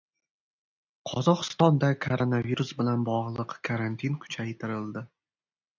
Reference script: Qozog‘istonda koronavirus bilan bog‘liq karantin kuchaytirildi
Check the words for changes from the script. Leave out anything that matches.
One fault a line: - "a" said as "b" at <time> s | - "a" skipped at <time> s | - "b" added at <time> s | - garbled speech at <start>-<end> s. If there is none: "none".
none